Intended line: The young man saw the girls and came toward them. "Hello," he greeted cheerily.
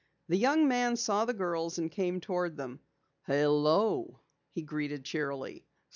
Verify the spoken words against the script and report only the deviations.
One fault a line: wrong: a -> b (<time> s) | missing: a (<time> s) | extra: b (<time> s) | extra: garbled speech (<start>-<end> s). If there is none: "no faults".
no faults